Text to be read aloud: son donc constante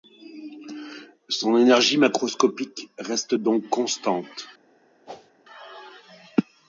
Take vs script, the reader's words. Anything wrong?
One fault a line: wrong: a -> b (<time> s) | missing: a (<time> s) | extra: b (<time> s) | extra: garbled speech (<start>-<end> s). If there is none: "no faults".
extra: énergie macroscopique reste (1.6 s)